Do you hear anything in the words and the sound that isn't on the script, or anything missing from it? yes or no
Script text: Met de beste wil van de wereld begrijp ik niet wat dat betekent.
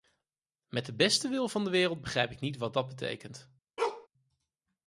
yes